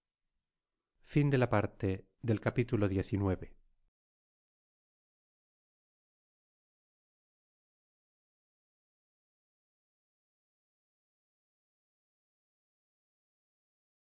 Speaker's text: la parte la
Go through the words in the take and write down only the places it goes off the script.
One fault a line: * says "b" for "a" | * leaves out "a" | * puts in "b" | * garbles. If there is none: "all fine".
all fine